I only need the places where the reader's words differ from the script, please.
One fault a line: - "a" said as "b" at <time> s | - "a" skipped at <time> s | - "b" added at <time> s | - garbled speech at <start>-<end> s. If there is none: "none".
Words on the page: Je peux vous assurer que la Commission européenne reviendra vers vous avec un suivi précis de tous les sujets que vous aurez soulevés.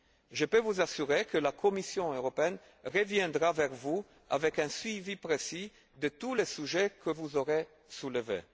none